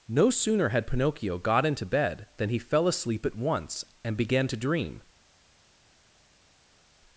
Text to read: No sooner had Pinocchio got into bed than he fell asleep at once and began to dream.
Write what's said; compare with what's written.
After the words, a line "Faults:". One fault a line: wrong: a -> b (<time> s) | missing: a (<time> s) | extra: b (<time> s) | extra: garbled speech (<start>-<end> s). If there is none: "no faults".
No sooner had Pinocchio got into bed than he fell asleep at once and began to dream.
Faults:
no faults